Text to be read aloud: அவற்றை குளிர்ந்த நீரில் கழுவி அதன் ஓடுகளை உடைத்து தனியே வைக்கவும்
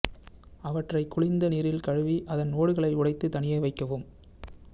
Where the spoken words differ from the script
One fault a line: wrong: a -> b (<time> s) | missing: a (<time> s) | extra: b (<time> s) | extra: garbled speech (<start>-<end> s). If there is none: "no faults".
no faults